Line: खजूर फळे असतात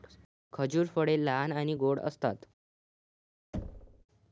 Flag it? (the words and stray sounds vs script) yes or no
yes